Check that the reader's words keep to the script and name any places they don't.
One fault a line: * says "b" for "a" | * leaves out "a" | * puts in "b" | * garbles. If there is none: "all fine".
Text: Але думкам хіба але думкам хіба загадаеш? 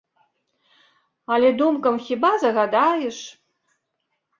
* leaves out "але думкам хіба"